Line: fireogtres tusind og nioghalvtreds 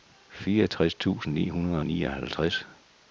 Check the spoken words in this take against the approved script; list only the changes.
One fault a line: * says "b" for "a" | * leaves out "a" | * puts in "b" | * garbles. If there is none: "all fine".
* puts in "ni hundrede"